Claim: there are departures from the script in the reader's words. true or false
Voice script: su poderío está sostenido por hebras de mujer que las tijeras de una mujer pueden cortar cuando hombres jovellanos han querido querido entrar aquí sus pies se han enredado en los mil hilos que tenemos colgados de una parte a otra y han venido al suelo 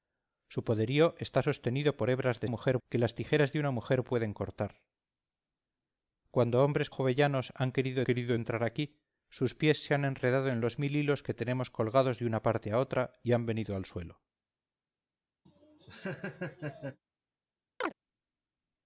false